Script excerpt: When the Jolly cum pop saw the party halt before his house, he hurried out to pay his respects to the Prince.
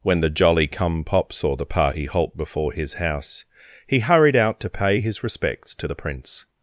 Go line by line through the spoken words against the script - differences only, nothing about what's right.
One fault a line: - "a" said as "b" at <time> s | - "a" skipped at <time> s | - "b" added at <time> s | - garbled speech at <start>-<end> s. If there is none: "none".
none